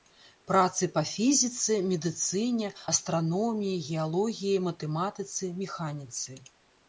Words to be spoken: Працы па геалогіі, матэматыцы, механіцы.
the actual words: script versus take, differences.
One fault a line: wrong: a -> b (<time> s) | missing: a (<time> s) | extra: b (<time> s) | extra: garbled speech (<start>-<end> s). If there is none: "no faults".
extra: фізіцы медыцыне астраноміі (1.1 s)